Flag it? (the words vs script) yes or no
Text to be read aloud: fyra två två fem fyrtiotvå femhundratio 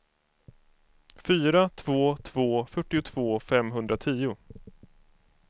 yes